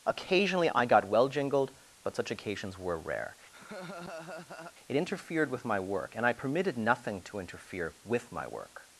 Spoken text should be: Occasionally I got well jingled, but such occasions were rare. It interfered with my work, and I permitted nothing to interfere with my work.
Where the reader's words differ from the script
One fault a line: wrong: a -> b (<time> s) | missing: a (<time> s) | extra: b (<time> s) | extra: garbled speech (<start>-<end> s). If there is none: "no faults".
no faults